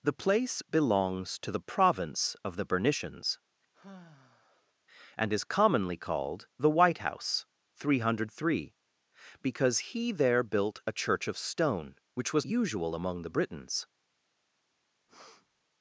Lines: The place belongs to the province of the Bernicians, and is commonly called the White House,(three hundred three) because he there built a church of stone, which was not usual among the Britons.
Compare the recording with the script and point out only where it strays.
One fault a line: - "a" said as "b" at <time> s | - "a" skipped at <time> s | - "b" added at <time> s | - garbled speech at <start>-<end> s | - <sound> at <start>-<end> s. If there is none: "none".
- sigh at 3.7-4.7 s
- "not" skipped at 12.5 s
- breath at 15.1-15.7 s